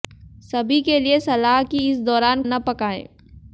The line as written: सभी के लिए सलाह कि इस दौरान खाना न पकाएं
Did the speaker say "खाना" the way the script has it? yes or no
no